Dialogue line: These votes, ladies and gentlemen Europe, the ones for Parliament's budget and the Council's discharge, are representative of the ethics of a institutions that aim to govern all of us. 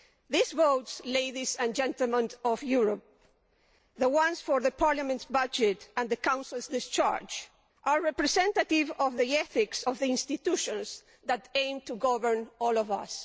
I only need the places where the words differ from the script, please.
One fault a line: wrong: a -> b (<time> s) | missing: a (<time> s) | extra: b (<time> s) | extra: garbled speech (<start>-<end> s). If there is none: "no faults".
extra: of (2.4 s)
wrong: a -> the (10.0 s)